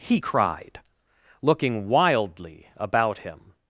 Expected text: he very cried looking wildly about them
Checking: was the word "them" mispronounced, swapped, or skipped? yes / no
yes